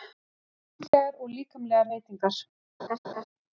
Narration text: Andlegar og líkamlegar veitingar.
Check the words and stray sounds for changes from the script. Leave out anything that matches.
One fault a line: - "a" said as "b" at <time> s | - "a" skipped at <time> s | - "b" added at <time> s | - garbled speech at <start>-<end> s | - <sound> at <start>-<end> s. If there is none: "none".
- dropout at 0.9-0.9 s
- laugh at 2.8-3.2 s